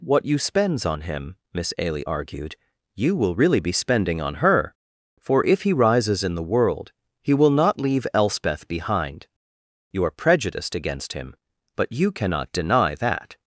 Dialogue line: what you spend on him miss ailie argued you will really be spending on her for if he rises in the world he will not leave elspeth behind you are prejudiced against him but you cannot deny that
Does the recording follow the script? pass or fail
fail